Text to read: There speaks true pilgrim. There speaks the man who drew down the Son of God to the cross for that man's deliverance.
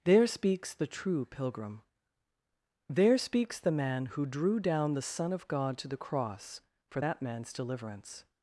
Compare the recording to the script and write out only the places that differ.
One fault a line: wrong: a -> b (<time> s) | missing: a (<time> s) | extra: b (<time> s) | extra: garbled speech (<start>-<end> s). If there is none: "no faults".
extra: the (0.7 s)